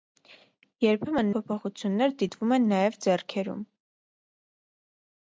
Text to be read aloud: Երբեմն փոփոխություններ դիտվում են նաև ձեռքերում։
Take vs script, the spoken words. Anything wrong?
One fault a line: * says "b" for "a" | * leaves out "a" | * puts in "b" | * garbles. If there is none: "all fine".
all fine